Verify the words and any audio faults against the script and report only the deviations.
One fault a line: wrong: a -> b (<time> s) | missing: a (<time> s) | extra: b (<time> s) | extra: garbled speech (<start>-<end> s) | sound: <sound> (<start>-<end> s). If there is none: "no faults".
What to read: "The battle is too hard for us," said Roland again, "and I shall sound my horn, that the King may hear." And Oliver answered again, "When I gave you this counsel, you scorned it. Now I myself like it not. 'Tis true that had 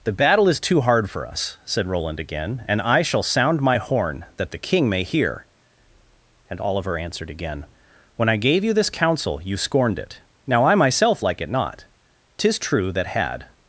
no faults